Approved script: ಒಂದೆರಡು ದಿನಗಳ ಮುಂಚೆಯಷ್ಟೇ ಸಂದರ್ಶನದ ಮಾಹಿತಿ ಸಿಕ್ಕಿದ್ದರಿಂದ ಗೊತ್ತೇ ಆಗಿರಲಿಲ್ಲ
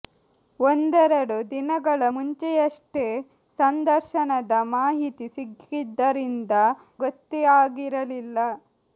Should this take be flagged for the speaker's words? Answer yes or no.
no